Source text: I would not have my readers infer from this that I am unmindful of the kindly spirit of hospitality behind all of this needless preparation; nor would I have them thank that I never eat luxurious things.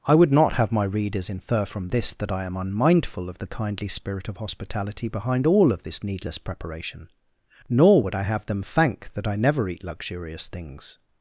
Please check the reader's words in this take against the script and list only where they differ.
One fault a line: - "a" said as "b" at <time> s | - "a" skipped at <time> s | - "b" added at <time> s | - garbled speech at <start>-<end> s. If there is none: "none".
none